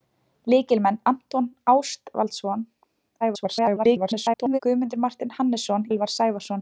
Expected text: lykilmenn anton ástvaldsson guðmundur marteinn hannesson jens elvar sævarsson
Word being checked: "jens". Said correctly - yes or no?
no